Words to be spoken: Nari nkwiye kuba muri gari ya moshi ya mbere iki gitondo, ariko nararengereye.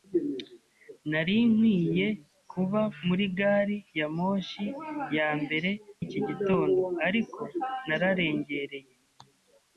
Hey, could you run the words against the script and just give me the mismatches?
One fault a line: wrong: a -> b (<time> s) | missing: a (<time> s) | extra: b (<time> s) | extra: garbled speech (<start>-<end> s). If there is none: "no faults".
no faults